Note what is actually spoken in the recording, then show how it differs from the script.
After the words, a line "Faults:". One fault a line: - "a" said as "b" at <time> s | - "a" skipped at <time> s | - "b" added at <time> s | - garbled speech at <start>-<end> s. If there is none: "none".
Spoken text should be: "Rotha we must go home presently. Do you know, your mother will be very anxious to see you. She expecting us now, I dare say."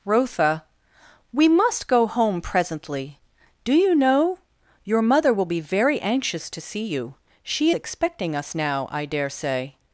"Rotha we must go home presently. Do you know, your mother will be very anxious to see you. She expecting us now, I dare say."
Faults:
none